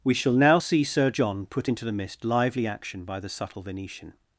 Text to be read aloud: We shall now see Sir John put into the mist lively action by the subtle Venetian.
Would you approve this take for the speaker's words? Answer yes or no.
yes